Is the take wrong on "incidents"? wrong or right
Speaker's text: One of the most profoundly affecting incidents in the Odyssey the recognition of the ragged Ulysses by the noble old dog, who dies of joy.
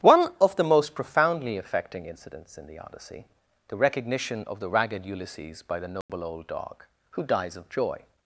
right